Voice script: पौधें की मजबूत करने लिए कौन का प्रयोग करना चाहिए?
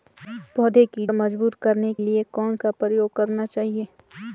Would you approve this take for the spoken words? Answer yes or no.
yes